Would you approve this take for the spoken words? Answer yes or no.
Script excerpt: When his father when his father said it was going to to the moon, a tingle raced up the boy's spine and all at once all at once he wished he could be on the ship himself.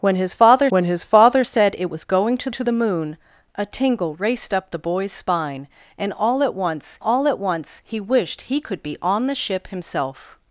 yes